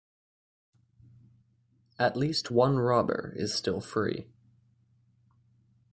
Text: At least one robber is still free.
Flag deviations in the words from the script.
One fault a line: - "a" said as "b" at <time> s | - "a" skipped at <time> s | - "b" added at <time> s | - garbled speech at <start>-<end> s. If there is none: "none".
none